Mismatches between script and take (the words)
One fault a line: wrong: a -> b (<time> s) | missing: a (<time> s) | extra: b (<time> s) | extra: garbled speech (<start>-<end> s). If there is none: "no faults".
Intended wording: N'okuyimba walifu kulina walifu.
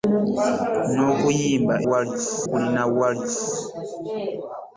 no faults